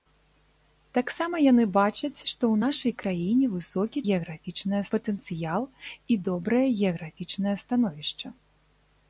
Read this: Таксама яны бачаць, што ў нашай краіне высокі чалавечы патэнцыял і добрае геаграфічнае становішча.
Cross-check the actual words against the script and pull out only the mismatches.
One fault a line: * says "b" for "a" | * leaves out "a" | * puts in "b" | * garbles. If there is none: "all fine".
* says "геаграфічнае" for "чалавечы"